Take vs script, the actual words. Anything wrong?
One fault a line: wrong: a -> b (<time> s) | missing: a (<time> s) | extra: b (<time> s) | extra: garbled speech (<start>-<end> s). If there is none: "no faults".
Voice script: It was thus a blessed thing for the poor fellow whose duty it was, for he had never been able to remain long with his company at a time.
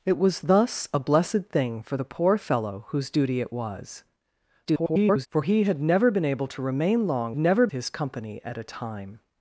extra: garbled speech (4.7-5.3 s)
wrong: with -> never (7.4 s)